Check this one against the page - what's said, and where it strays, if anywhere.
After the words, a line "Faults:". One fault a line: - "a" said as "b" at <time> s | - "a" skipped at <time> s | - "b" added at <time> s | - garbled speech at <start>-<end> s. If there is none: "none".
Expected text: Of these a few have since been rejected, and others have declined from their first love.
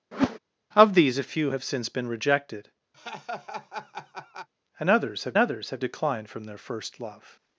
Of these a few have since been rejected, and others have others have declined from their first love.
Faults:
- "others have" added at 5.4 s